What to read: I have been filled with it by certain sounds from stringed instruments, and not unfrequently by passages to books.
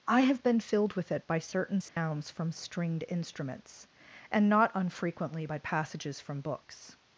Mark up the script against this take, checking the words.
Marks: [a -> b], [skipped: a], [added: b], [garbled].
I have been filled with it by certain sounds from stringed instruments, and not unfrequently by passages [to -> from] books.